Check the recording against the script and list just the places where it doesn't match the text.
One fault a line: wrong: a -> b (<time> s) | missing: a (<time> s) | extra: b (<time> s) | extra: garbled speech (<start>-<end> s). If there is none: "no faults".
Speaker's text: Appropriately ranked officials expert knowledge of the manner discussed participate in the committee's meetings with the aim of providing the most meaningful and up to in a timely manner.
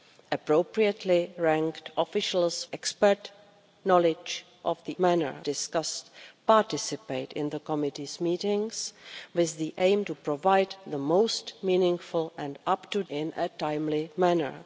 no faults